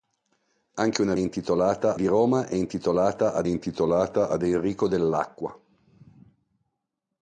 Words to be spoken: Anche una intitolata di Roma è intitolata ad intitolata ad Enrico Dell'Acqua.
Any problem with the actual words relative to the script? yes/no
no